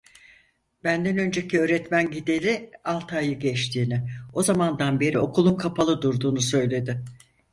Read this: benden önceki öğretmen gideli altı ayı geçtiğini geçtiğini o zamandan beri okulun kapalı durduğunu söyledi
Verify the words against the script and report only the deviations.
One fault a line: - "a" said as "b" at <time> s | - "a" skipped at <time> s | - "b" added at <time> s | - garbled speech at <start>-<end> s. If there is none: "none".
- "geçtiğini" skipped at 4.1 s